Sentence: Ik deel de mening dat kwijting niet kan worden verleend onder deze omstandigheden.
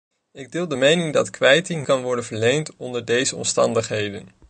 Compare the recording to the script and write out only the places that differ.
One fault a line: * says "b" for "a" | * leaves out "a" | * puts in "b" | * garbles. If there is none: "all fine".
* leaves out "niet"